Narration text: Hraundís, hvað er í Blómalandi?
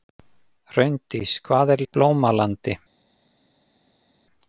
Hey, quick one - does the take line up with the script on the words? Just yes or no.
yes